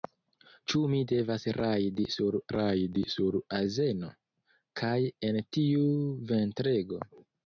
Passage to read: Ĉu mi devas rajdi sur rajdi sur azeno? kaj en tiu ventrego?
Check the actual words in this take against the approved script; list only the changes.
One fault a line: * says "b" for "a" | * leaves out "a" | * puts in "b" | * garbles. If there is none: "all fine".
all fine